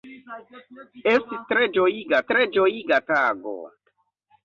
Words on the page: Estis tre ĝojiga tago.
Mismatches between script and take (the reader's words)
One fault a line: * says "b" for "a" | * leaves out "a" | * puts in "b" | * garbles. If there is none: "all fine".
* puts in "tre ĝojiga"